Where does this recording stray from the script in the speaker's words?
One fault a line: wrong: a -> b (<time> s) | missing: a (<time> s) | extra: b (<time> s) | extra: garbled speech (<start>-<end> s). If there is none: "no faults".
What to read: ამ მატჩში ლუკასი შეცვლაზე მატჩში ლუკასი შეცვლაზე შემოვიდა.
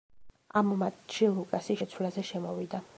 missing: მატჩში ლუკასი შეცვლაზე (2.3 s)